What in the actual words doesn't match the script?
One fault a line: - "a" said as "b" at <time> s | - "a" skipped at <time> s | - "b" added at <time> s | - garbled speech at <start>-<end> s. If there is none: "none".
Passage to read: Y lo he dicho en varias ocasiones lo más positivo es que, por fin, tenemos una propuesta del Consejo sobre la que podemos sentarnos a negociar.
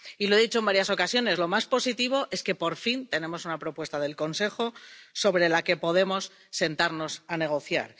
none